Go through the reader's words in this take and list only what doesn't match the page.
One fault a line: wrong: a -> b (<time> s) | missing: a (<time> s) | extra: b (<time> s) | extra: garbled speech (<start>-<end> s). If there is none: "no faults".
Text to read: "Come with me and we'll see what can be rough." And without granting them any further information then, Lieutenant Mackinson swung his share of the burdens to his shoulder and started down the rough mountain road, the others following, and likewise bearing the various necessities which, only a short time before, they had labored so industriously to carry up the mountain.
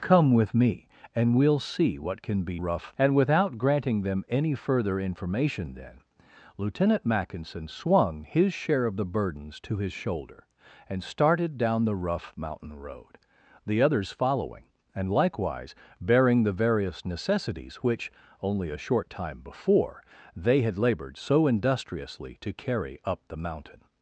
no faults